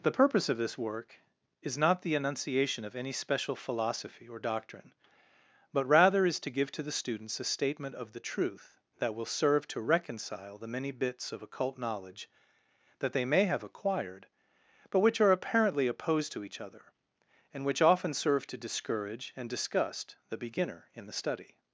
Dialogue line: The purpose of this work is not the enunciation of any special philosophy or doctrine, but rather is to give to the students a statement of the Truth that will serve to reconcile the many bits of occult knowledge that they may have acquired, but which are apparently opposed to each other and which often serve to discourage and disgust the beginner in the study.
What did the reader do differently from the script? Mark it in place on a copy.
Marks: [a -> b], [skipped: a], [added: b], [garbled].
The purpose of this work is not the enunciation of any special philosophy or doctrine, but rather is to give to the students a statement of the Truth that will serve to reconcile the many bits of occult knowledge that they may have acquired, but which are apparently opposed to each other and which often serve to discourage and disgust the beginner in the study.